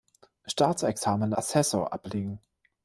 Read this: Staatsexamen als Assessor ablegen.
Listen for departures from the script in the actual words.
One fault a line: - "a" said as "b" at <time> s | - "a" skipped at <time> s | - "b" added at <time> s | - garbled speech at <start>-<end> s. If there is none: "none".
- "als" skipped at 1.3 s